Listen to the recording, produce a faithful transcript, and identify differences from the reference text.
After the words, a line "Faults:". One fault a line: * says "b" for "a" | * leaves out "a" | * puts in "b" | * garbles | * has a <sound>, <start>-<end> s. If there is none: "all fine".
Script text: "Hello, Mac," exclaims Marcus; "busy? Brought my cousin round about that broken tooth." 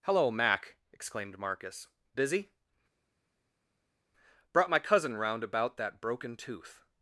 "Hello, Mac," exclaimed Marcus; "busy? Brought my cousin round about that broken tooth."
Faults:
* says "exclaimed" for "exclaims"